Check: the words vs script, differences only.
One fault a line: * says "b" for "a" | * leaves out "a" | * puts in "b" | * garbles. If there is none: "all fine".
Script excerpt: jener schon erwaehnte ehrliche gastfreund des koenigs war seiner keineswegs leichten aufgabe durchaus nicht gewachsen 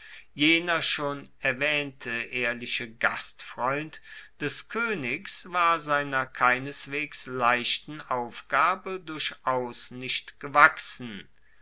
all fine